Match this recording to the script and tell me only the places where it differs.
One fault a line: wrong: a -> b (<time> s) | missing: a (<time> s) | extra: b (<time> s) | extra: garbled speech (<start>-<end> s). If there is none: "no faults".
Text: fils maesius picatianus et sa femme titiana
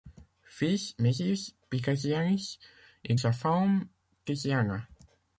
no faults